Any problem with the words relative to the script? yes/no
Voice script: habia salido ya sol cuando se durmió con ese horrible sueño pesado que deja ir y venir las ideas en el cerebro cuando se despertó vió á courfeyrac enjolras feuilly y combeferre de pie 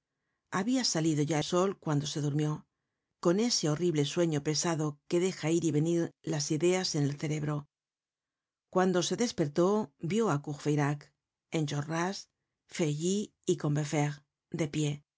no